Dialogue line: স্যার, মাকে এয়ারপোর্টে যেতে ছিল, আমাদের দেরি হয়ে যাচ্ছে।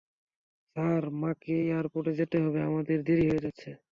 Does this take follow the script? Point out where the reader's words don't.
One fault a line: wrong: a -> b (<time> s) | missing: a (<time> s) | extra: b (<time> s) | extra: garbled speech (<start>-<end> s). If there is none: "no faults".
wrong: ছিল -> হবে (2.4 s)